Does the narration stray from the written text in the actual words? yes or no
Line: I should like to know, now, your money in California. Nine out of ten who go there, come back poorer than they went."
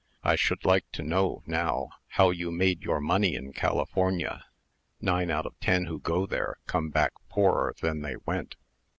yes